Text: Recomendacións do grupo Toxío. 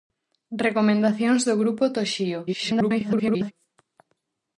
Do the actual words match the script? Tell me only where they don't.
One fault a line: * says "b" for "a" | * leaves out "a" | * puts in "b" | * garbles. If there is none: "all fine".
* garbles